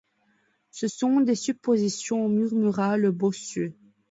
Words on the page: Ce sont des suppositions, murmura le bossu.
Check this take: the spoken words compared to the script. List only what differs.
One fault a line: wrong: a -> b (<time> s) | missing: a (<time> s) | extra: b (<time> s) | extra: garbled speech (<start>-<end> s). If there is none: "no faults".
no faults